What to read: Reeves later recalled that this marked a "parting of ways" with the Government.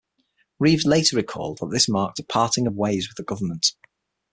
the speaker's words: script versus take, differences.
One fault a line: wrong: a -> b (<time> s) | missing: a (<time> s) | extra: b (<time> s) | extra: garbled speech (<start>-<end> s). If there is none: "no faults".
no faults